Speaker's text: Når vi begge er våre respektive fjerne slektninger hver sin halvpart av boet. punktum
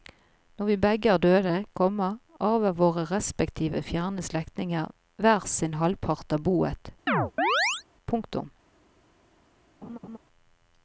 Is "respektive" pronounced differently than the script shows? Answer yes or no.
no